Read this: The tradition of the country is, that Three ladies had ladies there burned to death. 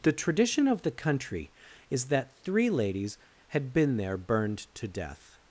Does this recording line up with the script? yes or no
no